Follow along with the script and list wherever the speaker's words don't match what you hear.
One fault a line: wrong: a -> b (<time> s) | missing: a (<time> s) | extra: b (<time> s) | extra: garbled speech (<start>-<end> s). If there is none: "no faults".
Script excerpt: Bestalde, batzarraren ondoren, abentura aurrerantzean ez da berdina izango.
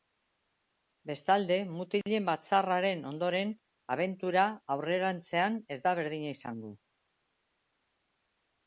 extra: mutilen (1.7 s)